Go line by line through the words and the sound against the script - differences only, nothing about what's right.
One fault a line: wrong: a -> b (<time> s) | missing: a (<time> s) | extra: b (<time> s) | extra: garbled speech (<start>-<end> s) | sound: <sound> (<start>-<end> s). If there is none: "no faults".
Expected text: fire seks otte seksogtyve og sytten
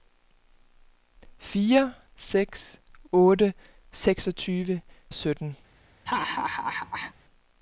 sound: laugh (6.1-7.1 s)